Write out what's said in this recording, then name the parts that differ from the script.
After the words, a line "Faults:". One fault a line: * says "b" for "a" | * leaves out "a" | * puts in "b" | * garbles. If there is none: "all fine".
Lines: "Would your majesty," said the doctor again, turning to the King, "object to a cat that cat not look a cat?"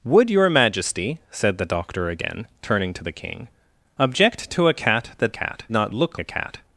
"Would your majesty," said the doctor again, turning to the King, "object to a cat that cat not look a cat?"
Faults:
all fine